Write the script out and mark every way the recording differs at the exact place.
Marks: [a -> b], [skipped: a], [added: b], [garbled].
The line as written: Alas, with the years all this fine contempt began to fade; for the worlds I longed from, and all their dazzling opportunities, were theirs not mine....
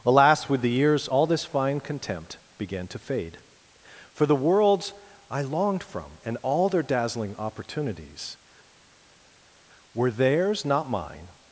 Alas, with the years all this fine contempt began to fade; for the worlds I longed from, and all their dazzling opportunities, were theirs not mine....